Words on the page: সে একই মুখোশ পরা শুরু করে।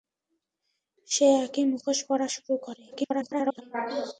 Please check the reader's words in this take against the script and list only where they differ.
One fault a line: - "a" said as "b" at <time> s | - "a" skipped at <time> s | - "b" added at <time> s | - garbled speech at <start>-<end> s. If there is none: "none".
- garbled speech at 2.9-3.6 s